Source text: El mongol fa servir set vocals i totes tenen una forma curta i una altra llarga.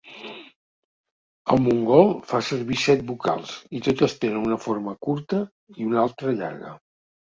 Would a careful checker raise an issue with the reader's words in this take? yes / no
no